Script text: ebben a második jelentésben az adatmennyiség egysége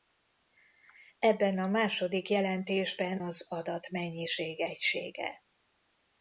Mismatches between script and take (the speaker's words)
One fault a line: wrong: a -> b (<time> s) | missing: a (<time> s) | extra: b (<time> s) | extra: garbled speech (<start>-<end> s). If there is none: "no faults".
no faults